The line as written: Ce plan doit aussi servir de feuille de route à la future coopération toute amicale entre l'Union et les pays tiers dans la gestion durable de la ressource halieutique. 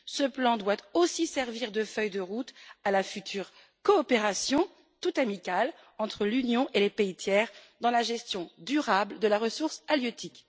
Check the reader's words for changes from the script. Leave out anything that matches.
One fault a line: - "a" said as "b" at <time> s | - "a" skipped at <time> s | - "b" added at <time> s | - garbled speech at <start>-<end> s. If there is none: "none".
none